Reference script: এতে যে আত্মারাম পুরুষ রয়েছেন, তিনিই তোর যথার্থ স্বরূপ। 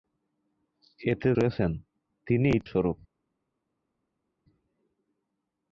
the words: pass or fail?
fail